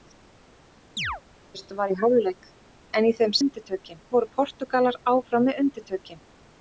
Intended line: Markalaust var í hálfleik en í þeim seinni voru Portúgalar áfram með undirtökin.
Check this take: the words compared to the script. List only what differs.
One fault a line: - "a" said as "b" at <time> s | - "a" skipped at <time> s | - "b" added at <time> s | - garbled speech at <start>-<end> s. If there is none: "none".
- "seinni" said as "undirtökin" at 3.4 s